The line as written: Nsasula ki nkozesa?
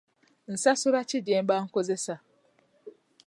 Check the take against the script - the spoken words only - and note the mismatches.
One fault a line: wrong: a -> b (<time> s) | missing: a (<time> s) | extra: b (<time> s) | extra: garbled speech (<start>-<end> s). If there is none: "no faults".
extra: gyemba (1.3 s)